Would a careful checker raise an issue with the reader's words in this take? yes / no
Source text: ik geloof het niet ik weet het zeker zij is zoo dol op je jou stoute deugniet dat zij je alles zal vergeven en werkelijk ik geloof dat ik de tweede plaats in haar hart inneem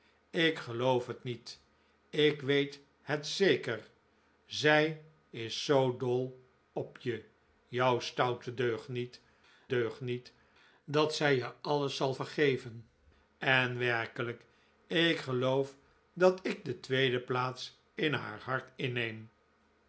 yes